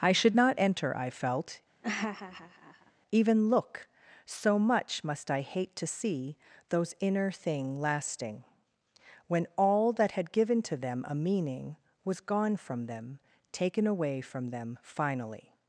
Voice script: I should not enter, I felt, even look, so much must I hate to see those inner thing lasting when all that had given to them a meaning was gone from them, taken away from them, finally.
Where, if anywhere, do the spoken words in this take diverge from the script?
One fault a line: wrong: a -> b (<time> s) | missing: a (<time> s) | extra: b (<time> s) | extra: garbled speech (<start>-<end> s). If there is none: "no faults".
no faults